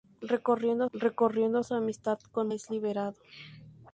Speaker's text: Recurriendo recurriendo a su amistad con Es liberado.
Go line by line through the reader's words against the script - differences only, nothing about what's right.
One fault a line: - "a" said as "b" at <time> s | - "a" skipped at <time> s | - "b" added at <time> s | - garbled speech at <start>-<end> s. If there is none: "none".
none